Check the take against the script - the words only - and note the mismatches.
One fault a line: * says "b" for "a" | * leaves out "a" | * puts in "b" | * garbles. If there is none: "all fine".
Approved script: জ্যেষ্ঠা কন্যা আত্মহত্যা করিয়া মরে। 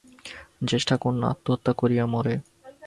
all fine